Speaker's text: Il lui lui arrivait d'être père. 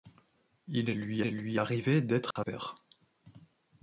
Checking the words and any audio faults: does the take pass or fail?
fail